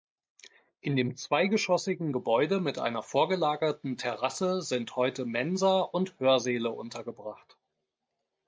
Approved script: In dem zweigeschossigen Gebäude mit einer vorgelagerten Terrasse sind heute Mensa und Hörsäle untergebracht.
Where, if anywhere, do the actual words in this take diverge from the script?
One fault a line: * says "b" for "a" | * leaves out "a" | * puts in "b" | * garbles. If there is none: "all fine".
all fine